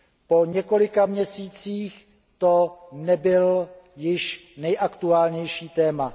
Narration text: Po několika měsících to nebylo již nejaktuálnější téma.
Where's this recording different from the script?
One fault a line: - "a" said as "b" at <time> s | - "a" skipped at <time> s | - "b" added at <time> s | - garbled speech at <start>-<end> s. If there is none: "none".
none